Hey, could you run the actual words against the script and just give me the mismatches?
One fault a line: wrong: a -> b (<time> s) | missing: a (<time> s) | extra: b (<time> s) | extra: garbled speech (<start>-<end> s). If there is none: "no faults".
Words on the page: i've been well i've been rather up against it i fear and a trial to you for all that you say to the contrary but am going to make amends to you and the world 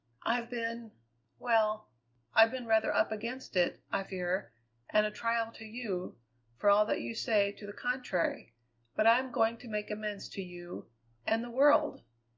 extra: i (9.1 s)